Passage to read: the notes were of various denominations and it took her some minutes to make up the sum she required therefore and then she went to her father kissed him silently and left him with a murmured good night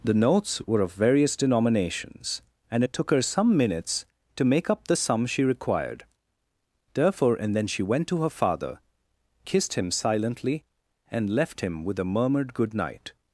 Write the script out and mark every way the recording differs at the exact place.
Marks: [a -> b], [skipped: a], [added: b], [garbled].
the notes were of various denominations and it took her some minutes to make up the sum she required therefore and then she went to her father kissed him silently and left him with a murmured good night